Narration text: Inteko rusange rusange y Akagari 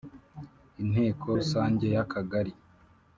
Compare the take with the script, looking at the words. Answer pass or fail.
fail